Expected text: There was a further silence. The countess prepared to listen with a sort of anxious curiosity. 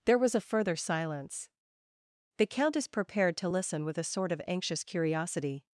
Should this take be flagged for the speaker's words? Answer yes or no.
no